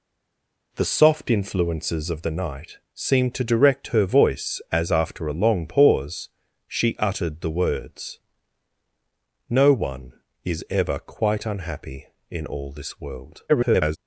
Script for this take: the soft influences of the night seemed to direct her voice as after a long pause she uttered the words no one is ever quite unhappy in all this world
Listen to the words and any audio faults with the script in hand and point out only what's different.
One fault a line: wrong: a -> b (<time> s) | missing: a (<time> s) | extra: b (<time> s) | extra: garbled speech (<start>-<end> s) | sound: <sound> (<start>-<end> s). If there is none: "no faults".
extra: garbled speech (13.5-14.0 s)